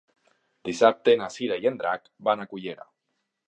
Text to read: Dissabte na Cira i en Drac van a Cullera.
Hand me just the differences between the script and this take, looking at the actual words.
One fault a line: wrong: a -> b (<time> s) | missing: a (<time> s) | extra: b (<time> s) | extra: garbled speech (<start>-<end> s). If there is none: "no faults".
no faults